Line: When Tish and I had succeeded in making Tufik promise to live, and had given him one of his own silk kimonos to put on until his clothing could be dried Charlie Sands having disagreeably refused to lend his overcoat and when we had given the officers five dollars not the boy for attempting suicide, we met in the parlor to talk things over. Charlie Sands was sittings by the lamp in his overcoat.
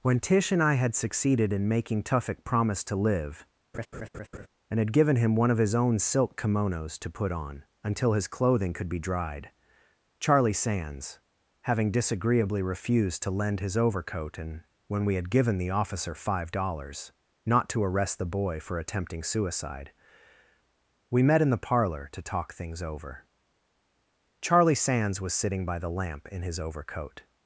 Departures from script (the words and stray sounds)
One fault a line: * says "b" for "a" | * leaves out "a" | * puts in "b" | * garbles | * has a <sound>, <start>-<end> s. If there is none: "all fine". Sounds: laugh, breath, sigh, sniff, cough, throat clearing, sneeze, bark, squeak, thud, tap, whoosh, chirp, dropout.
* has a laugh, 3.7-4.5 s
* says "officer" for "officers"
* puts in "to arrest"
* says "sitting" for "sittings"